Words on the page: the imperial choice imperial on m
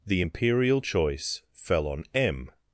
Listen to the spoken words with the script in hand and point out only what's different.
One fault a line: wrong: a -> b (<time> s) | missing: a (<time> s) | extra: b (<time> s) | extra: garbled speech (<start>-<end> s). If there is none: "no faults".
wrong: imperial -> fell (1.5 s)